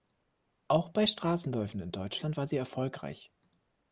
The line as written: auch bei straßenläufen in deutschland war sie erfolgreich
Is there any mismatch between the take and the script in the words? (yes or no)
no